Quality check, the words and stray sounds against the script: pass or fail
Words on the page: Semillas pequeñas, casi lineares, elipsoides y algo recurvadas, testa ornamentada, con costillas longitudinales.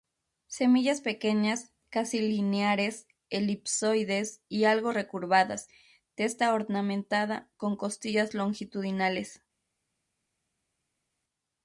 pass